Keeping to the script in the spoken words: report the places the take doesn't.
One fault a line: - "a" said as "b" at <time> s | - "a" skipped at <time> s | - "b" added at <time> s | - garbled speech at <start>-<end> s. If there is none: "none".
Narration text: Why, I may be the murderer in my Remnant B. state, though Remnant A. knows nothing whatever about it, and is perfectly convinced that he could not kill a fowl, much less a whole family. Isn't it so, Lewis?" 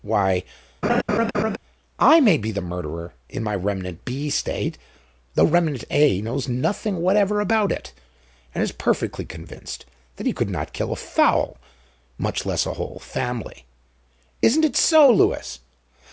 none